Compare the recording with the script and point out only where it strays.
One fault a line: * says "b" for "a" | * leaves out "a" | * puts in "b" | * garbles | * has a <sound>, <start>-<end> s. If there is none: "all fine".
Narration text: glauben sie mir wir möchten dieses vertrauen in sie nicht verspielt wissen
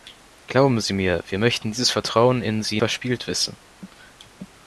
* leaves out "nicht"